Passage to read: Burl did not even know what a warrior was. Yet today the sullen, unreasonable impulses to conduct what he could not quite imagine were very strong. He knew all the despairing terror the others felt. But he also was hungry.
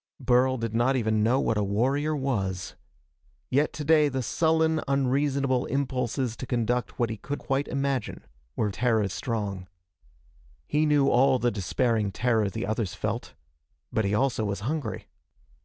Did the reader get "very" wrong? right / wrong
wrong